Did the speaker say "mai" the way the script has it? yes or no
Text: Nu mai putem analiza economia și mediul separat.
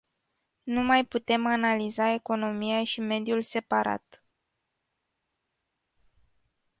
yes